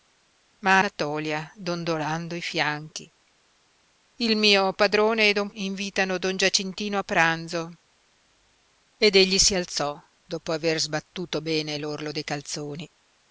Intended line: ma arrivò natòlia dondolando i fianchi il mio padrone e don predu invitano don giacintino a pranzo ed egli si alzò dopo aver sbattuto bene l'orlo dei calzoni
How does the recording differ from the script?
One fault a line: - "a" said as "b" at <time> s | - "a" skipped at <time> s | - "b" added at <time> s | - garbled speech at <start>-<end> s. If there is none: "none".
- "arrivò" skipped at 0.8 s
- "predu" skipped at 5.5 s